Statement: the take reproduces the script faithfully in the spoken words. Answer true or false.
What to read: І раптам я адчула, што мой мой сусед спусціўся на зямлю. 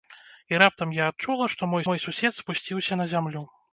true